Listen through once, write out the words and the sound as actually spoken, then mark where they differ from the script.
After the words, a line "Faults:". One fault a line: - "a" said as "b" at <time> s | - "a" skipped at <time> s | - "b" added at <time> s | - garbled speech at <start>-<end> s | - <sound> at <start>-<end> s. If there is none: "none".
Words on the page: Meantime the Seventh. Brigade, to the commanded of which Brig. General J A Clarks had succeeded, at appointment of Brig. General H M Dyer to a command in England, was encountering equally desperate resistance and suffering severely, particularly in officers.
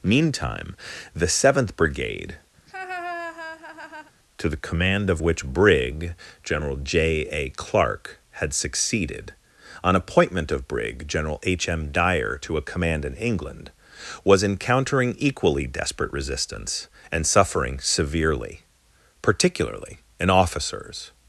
Meantime the Seventh. Brigade, to the command of which Brig. General J A Clark had succeeded, on appointment of Brig. General H M Dyer to a command in England, was encountering equally desperate resistance and suffering severely, particularly in officers.
Faults:
- laugh at 2.6-4.1 s
- "commanded" said as "command" at 4.6 s
- "Clarks" said as "Clark" at 7.5 s
- "at" said as "on" at 9.8 s